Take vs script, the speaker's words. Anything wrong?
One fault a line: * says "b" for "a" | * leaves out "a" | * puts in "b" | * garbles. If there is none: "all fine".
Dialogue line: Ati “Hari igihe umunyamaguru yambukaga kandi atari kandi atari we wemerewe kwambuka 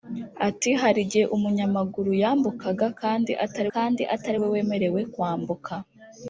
all fine